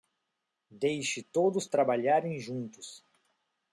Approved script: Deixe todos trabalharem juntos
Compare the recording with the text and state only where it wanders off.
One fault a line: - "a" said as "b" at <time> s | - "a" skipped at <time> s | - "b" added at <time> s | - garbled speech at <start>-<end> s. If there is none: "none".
none